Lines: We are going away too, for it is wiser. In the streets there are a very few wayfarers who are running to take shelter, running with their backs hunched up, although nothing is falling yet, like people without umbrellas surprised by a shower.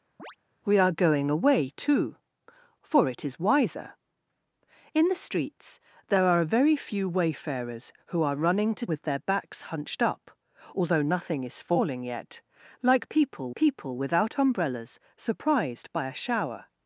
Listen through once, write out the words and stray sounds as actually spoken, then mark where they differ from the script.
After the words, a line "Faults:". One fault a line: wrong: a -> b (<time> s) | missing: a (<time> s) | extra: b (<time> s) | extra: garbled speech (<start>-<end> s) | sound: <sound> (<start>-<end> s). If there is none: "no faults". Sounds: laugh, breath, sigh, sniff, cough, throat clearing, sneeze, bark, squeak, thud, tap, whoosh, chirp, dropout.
We are going away too, for it is wiser. In the streets there are a very few wayfarers who are running to with their backs hunched up, although nothing is falling yet, like people people without umbrellas surprised by a shower.
Faults:
sound: chirp (0.2-0.4 s)
missing: take shelter running (8.9 s)
extra: people (13.5 s)